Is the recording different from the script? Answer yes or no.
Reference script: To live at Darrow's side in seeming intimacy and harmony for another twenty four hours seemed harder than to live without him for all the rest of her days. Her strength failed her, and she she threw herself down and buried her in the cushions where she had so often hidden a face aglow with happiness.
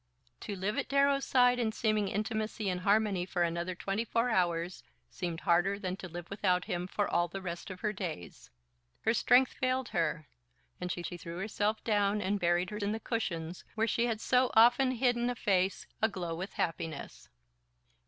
no